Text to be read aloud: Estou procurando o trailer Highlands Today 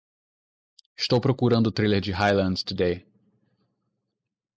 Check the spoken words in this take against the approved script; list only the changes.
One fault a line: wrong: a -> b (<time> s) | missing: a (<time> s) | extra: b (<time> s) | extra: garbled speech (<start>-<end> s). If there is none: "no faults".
extra: de (2.0 s)